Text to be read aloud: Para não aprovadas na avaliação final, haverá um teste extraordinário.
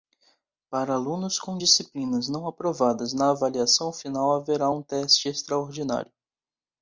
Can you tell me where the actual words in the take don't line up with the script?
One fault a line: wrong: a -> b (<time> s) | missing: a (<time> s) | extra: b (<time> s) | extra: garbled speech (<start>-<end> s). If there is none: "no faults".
extra: alunos com disciplinas (0.9 s)